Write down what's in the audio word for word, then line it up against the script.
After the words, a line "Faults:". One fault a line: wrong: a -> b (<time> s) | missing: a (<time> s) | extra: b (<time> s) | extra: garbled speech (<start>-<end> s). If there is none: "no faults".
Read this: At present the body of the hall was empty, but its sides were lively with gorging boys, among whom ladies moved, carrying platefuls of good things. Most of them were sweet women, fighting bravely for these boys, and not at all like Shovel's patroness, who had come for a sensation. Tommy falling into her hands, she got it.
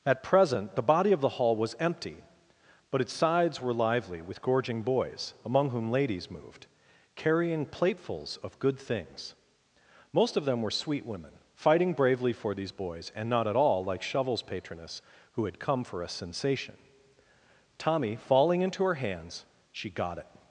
At present the body of the hall was empty, but its sides were lively with gorging boys, among whom ladies moved, carrying platefuls of good things. Most of them were sweet women, fighting bravely for these boys, and not at all like Shovel's patroness, who had come for a sensation. Tommy falling into her hands, she got it.
Faults:
no faults